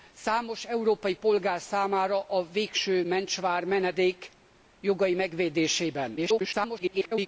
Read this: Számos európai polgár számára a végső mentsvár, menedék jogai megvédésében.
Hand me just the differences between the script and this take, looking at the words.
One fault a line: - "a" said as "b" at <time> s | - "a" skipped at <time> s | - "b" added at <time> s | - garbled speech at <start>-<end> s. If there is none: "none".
- garbled speech at 6.2-7.3 s